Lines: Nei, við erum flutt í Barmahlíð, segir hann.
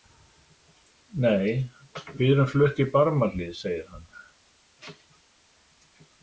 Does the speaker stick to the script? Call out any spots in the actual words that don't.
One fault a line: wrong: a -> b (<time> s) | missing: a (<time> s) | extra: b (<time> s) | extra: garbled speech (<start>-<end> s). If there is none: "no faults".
no faults